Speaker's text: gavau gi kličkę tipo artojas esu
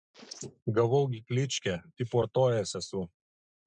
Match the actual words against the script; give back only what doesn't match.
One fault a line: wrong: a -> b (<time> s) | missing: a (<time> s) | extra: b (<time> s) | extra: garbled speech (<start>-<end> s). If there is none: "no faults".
no faults